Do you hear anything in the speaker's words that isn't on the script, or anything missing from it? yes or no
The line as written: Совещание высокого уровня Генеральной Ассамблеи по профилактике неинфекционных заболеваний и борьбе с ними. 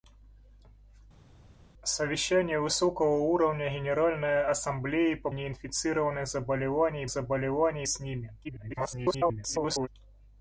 yes